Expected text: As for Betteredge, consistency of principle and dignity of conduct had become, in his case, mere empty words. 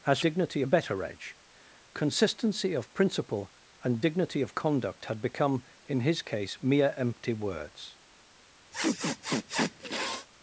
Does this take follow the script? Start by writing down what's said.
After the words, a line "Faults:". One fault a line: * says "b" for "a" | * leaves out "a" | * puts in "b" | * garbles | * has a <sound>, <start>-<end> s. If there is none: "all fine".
As dignity Betteredge, consistency of principle and dignity of conduct had become, in his case, mere empty words.
Faults:
* says "dignity" for "for"
* has a sniff, 8.7-10.3 s